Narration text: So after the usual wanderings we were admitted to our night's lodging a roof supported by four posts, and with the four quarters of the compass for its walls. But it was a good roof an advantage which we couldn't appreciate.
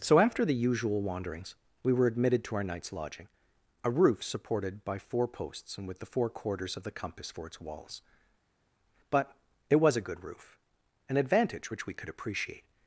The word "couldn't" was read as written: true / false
false